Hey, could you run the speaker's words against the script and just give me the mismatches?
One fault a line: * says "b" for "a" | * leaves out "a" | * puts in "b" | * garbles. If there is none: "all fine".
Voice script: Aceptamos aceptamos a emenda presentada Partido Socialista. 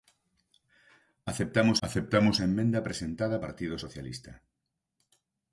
all fine